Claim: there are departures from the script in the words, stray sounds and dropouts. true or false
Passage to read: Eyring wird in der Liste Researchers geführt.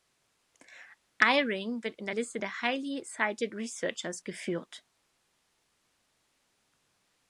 true